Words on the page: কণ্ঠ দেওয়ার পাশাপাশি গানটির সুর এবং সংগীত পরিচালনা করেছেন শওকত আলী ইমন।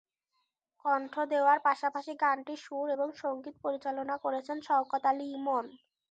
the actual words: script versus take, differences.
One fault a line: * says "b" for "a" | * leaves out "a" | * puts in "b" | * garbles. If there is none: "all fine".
all fine